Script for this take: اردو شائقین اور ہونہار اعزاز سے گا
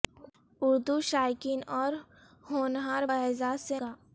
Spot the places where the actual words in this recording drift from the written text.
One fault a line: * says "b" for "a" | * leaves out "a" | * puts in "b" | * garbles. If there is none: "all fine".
all fine